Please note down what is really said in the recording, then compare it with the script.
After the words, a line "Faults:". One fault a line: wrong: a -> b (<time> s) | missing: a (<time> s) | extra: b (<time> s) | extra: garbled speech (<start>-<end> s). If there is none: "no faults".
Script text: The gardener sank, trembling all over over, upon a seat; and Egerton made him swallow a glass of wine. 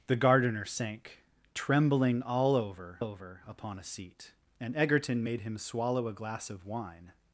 The gardener sank, trembling all over over, upon a seat; and Egerton made him swallow a glass of wine.
Faults:
no faults